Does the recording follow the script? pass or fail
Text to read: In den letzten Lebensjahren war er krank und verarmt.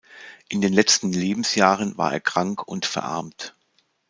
pass